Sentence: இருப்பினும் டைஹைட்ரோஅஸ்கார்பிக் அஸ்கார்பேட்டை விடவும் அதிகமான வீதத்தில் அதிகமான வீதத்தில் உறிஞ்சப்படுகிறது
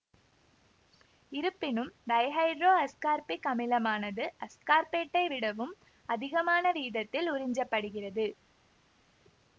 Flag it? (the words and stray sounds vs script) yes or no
yes